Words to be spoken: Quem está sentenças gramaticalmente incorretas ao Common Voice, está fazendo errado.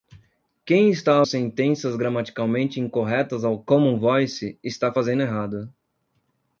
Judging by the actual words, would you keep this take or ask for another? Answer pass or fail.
pass